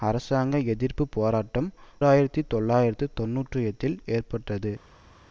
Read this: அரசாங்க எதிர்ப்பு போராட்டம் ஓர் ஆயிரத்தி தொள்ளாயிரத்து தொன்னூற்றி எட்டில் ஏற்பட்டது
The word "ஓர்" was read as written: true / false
false